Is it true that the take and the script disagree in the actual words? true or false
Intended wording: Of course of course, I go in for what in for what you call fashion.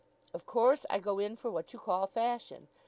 true